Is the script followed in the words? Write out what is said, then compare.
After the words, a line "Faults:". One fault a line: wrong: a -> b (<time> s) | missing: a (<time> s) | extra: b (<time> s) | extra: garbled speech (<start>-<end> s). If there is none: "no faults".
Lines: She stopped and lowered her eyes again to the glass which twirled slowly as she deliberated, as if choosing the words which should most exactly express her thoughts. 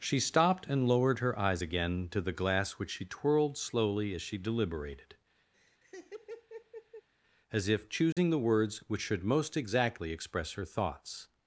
She stopped and lowered her eyes again to the glass which she twirled slowly as she deliberated, as if choosing the words which should most exactly express her thoughts.
Faults:
extra: she (2.9 s)